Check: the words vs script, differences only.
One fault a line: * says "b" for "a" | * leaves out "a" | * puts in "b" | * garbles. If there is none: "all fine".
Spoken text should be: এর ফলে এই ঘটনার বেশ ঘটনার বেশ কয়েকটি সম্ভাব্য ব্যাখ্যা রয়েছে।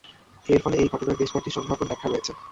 * leaves out "ঘটনার বেশ"